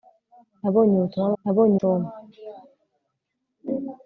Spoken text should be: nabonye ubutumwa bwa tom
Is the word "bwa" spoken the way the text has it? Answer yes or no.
no